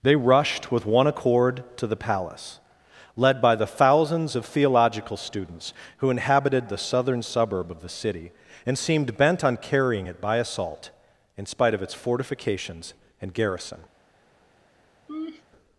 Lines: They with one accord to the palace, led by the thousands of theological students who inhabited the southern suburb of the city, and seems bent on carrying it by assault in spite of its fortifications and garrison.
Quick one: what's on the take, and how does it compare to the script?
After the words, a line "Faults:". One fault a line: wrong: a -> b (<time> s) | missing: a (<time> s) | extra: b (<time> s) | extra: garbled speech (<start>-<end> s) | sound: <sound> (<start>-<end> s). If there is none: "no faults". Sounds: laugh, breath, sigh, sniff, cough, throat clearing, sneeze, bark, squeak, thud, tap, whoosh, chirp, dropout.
They rushed with one accord to the palace, led by the thousands of theological students who inhabited the southern suburb of the city, and seemed bent on carrying it by assault in spite of its fortifications and garrison.
Faults:
extra: rushed (0.1 s)
wrong: seems -> seemed (8.8 s)
sound: laugh (15.1-15.4 s)